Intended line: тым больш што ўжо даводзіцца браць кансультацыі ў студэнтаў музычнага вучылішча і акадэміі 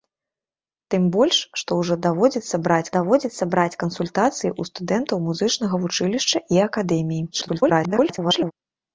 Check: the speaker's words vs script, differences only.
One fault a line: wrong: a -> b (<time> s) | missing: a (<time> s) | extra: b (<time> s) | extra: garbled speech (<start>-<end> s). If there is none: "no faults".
extra: даводзіцца браць (2.9 s)
extra: garbled speech (7.3-8.5 s)